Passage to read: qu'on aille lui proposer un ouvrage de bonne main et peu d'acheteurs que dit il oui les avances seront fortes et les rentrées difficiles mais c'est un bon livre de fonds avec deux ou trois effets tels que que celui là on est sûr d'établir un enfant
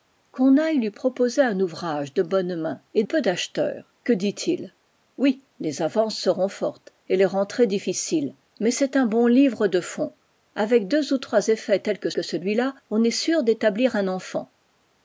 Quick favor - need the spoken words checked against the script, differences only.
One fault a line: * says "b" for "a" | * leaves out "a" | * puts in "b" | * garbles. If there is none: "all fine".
all fine